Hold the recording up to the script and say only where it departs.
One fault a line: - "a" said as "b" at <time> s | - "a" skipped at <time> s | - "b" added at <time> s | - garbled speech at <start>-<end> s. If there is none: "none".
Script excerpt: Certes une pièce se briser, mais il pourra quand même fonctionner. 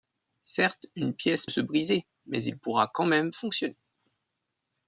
none